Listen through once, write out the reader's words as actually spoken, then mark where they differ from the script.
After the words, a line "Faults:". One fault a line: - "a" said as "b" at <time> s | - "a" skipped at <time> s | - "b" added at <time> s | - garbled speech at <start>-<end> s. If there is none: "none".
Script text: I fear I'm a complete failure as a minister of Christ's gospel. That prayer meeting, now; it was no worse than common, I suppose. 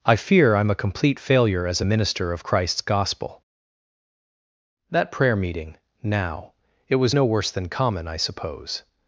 I fear I'm a complete failure as a minister of Christ's gospel. That prayer meeting, now; it was no worse than common, I suppose.
Faults:
none